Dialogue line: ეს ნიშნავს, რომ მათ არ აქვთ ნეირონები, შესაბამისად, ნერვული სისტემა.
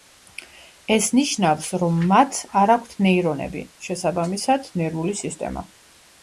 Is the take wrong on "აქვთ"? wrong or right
right